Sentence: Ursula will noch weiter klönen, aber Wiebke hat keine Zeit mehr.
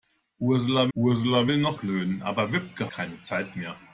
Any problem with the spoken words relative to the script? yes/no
yes